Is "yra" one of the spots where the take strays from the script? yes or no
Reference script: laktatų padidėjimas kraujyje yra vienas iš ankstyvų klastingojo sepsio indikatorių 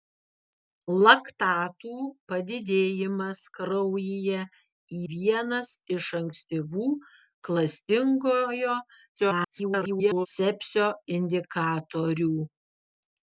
yes